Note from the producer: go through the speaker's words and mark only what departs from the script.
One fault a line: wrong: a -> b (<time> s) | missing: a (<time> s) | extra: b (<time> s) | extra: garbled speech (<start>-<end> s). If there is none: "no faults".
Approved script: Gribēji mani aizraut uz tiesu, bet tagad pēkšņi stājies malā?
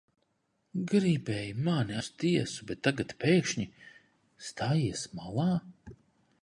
missing: aizraut (2.0 s)